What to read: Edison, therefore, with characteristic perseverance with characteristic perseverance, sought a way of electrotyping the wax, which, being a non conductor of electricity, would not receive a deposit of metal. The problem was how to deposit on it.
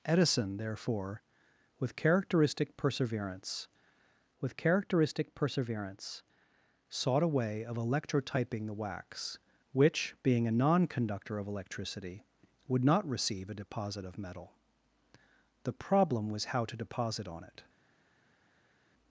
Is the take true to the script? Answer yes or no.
yes